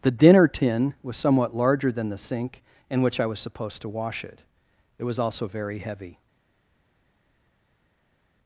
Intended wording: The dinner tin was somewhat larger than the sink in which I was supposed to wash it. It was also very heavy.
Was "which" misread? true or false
false